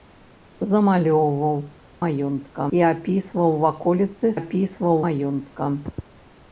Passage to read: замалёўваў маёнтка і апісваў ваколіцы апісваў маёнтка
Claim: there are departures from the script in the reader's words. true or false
false